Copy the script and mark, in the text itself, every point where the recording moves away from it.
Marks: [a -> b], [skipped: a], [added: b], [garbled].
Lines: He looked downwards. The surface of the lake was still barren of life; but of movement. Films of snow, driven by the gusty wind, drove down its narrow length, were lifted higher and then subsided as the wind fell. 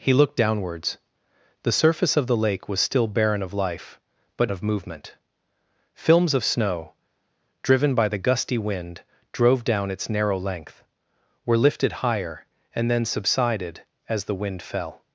He looked downwards. The surface of the lake was still barren of life; but of movement. Films of snow, driven by the gusty wind, drove down its narrow length, were lifted higher and then subsided as the wind fell.